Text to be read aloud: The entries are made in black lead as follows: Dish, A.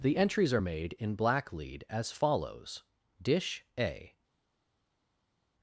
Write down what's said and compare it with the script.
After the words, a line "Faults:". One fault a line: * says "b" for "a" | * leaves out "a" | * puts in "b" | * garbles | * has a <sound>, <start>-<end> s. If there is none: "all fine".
The entries are made in black lead as follows: Dish, A.
Faults:
all fine